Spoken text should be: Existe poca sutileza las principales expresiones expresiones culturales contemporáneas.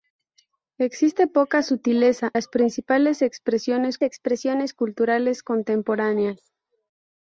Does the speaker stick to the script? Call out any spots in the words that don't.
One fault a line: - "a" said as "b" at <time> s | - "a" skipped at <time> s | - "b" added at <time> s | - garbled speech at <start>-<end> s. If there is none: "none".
none